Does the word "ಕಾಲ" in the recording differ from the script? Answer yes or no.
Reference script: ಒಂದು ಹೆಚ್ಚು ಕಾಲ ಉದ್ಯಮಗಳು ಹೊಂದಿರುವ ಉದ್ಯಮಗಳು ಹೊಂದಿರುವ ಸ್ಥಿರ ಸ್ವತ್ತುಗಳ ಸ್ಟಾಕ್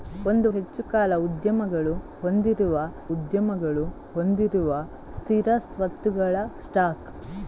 no